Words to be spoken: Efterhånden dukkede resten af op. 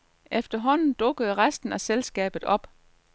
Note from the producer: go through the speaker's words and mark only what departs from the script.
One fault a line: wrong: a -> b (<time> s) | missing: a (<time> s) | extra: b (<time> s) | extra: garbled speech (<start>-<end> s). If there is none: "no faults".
extra: selskabet (1.8 s)